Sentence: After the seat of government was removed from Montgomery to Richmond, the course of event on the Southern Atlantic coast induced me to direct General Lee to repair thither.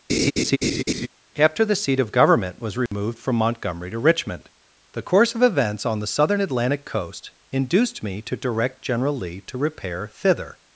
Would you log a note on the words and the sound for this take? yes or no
yes